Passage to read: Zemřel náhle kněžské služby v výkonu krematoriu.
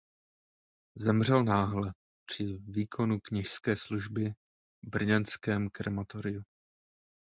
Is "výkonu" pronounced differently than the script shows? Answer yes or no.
yes